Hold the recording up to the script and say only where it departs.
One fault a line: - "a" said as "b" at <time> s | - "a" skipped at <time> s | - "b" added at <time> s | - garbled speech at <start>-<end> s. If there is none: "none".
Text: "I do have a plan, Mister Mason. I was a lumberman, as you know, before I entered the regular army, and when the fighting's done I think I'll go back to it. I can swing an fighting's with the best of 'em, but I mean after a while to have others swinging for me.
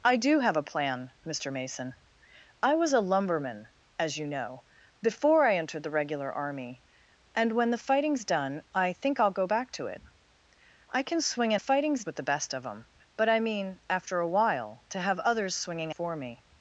none